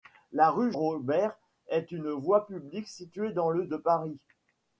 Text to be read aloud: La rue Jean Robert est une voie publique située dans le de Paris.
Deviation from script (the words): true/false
true